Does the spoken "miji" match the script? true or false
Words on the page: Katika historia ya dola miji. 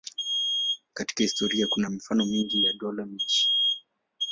true